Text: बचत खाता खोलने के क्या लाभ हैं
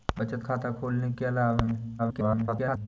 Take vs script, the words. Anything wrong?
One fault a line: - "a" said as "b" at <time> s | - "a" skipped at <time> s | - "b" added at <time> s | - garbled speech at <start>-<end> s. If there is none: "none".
- "के" skipped at 1.1 s
- garbled speech at 2.0-2.9 s